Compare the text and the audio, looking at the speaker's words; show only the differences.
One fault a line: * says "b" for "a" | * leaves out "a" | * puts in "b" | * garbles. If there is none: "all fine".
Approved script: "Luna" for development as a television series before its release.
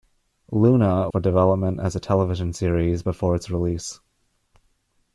all fine